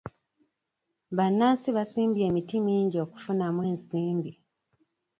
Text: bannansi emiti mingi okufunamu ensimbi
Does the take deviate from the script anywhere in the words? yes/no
yes